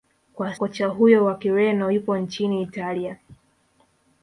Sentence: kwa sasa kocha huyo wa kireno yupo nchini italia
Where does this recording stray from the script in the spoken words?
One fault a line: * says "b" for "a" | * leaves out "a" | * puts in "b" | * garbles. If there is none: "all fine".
* leaves out "sasa"